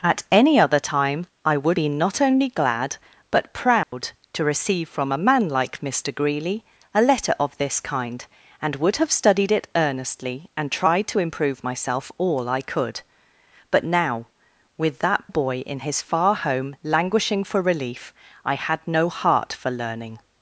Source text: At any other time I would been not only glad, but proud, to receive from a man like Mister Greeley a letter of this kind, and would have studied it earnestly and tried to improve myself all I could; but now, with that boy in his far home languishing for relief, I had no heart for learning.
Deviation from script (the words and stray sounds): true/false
true